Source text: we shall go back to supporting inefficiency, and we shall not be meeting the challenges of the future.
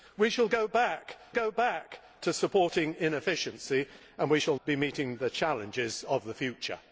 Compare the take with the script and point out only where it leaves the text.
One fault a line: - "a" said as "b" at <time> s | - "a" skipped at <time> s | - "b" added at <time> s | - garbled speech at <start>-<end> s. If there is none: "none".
- "go back" added at 1.3 s
- "not" skipped at 4.6 s